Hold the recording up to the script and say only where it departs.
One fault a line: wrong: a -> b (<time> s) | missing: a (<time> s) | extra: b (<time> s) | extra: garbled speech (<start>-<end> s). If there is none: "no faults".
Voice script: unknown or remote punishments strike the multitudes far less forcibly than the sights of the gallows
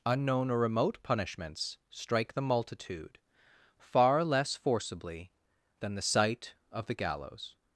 wrong: multitudes -> multitude (2.4 s)
wrong: sights -> sight (6.0 s)